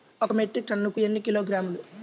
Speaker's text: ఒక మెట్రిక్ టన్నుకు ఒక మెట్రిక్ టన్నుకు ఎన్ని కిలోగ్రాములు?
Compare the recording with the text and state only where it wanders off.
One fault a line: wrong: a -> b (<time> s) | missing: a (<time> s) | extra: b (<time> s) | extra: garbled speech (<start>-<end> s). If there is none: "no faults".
missing: ఒక మెట్రిక్ టన్నుకు (1.0 s)